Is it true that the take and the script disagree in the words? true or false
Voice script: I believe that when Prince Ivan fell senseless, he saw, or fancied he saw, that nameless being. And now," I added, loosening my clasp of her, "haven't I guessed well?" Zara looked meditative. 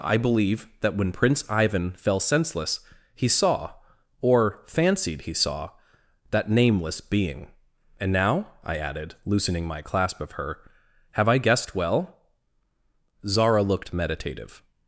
true